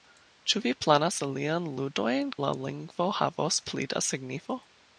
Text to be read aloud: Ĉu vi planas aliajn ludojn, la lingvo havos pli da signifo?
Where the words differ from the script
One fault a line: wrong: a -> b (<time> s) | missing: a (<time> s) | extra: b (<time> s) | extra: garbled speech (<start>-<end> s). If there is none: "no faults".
no faults